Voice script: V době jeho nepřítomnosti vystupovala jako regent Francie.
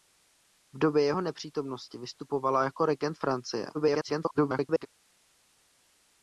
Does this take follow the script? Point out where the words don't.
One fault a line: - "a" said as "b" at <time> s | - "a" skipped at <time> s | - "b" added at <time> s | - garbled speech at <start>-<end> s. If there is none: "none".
- garbled speech at 3.7-4.9 s